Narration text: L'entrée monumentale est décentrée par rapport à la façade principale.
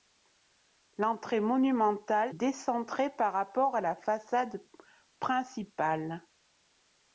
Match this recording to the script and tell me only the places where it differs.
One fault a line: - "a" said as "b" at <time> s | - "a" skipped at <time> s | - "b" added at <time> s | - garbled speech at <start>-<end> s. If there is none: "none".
- "est" skipped at 2.3 s